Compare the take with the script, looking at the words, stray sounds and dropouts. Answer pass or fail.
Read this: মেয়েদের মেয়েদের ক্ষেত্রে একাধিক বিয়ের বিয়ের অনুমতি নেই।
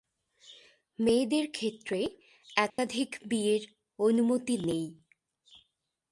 fail